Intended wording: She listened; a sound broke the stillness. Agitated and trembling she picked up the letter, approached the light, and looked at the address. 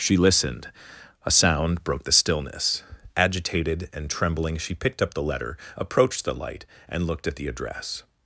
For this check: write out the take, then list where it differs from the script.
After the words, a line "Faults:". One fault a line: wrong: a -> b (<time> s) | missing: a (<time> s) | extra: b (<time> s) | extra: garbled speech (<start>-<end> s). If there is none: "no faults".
She listened; a sound broke the stillness. Agitated and trembling she picked up the letter, approached the light, and looked at the address.
Faults:
no faults